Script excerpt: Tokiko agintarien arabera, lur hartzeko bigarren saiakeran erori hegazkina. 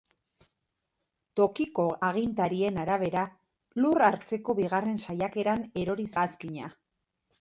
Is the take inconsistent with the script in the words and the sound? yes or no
no